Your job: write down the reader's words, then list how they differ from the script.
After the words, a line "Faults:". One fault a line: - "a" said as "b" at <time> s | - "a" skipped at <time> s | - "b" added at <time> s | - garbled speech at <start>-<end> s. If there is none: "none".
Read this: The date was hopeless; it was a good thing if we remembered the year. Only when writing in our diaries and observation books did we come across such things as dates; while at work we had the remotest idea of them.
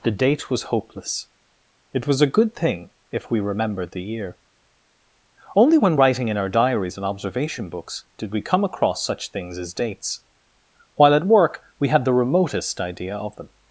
The date was hopeless; it was a good thing if we remembered the year. Only when writing in our diaries and observation books did we come across such things as dates; while at work we had the remotest idea of them.
Faults:
none